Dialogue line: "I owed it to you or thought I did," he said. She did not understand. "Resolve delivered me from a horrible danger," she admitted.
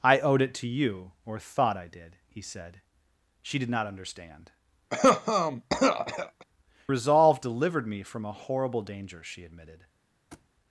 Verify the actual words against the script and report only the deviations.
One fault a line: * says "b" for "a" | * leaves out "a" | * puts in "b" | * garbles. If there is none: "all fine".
all fine